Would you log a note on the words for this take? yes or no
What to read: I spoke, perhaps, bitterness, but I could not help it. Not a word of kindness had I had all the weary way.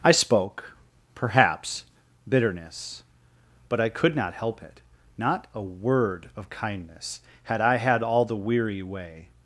no